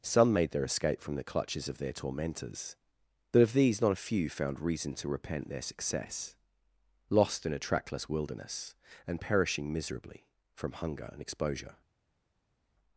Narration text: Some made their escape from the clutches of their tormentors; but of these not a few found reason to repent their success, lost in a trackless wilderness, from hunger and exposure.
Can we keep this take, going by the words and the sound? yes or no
no